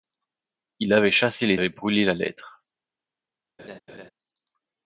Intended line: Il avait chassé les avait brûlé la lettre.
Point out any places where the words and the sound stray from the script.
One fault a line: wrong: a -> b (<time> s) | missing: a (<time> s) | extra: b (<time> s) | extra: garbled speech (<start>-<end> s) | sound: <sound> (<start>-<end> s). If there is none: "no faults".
sound: laugh (3.6-4.1 s)